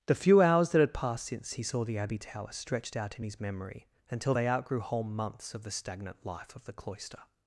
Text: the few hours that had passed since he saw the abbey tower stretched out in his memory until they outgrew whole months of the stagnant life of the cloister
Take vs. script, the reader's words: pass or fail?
pass